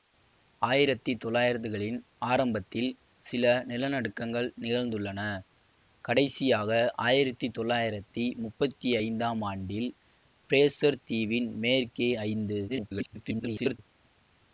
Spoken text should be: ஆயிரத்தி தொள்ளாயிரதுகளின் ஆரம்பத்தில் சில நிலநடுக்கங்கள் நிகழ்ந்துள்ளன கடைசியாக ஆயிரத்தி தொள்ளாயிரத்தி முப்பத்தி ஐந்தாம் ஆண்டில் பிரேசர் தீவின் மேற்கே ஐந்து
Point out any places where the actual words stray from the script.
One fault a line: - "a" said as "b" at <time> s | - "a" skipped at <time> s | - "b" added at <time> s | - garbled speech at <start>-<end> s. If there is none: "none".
- garbled speech at 12.7-13.8 s